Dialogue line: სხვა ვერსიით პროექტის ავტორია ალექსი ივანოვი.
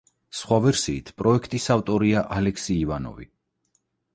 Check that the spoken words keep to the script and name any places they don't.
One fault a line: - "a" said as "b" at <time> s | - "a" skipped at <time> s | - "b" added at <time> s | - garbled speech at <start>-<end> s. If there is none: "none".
none